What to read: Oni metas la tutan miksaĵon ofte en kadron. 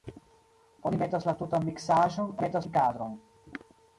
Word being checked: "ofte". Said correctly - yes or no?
no